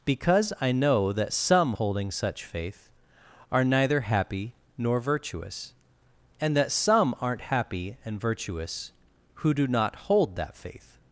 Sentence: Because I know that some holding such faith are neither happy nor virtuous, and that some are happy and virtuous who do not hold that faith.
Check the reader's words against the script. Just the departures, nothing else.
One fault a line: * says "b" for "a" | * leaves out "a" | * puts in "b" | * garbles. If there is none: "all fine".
* says "aren't" for "are"